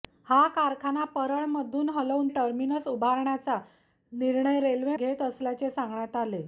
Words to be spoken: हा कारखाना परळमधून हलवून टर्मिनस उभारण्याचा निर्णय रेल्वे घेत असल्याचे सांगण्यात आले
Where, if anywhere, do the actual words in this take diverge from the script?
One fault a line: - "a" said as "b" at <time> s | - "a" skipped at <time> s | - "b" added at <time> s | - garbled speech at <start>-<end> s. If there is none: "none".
none